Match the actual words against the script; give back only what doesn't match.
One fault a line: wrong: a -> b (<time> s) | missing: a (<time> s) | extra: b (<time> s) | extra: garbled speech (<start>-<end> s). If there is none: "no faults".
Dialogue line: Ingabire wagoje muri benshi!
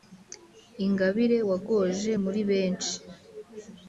no faults